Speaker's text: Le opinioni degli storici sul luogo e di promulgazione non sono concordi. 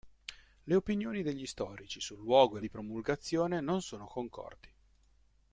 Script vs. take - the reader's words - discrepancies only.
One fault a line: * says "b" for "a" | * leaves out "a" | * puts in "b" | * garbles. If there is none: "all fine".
all fine